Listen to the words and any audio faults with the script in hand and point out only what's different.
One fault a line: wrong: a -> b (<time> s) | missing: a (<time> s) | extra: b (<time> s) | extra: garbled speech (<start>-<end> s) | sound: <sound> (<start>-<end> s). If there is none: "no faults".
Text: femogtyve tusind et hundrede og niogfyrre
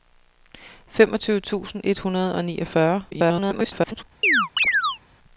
extra: garbled speech (3.1-4.0 s)
sound: chirp (4.2-5.0 s)